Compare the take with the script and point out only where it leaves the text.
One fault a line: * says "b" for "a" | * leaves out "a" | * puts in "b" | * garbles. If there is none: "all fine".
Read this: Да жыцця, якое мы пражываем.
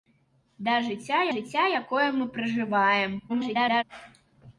* puts in "жыцця"
* garbles